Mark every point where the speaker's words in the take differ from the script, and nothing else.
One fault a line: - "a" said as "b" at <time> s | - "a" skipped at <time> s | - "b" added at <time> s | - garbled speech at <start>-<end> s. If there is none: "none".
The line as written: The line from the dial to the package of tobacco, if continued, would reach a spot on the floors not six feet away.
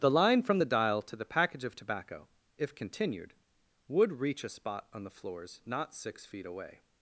none